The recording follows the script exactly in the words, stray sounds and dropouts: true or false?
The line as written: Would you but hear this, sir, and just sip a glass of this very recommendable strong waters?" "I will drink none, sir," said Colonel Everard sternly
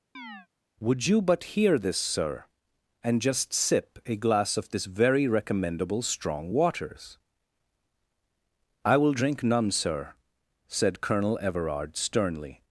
false